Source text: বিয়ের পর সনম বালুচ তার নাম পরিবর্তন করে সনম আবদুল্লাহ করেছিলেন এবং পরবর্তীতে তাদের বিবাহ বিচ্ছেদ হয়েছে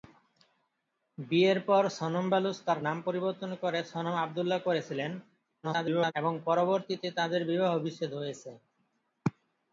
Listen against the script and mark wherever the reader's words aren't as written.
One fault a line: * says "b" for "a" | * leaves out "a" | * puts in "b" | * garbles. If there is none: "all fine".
* garbles